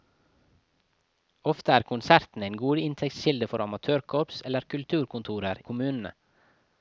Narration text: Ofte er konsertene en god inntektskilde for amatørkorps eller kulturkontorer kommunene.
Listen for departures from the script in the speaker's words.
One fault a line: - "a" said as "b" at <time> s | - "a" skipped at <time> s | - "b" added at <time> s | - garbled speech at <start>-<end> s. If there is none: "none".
none